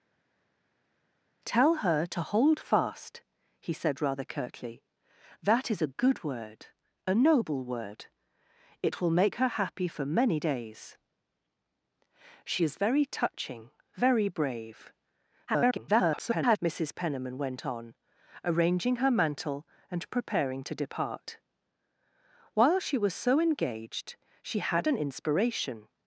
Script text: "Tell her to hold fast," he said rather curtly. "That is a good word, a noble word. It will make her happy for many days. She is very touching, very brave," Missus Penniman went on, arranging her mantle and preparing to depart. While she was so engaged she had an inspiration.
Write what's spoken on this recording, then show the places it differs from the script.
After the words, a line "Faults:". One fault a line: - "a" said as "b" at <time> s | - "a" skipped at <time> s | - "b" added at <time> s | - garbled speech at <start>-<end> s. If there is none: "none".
"Tell her to hold fast," he said rather curtly. "That is a good word, a noble word. It will make her happy for many days. She is very touching, very brave," [garbled] Missus Penniman went on, arranging her mantle and preparing to depart. While she was so engaged she had an inspiration.
Faults:
- garbled speech at 15.5-16.6 s